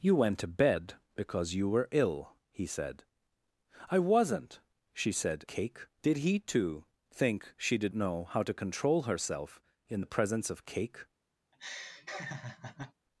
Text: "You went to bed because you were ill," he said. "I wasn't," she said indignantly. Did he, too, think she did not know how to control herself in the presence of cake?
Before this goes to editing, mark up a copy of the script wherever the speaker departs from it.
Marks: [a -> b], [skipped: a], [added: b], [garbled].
"You went to bed because you were ill," he said. "I wasn't," she said [indignantly. -> cake] Did he, too, think she did [skipped: not] know how to control herself in the presence of cake?